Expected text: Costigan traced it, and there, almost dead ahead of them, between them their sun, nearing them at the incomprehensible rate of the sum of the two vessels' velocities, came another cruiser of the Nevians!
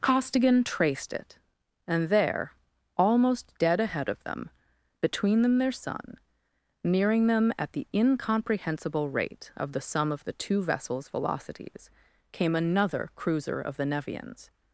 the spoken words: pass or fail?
pass